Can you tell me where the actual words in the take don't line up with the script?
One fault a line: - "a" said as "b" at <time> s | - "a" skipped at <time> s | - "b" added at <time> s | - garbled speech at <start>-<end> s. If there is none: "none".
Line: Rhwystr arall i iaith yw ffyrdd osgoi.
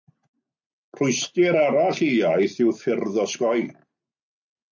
none